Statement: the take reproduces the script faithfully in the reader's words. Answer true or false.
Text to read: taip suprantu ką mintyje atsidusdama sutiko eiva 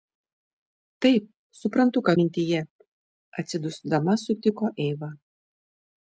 true